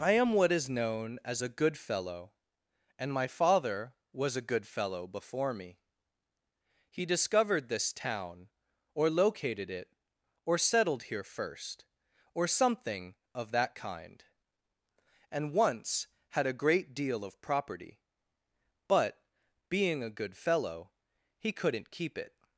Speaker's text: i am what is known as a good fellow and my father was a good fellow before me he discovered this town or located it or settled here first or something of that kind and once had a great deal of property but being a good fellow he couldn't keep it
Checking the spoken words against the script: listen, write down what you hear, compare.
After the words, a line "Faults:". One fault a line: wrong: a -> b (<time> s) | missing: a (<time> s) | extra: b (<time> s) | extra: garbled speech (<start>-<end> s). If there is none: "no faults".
i am what is known as a good fellow and my father was a good fellow before me he discovered this town or located it or settled here first or something of that kind and once had a great deal of property but being a good fellow he couldn't keep it
Faults:
no faults